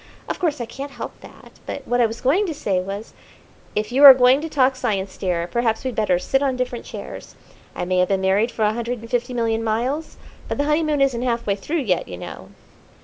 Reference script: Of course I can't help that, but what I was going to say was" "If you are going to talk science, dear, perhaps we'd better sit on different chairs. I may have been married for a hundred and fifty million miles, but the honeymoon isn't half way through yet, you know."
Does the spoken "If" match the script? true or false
true